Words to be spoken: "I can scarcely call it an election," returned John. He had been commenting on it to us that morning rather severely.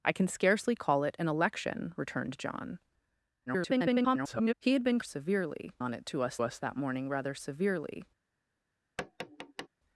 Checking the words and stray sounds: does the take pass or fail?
fail